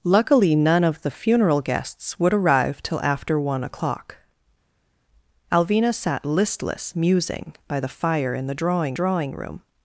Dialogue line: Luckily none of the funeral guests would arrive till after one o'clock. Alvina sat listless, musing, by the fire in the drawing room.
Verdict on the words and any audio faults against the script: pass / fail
fail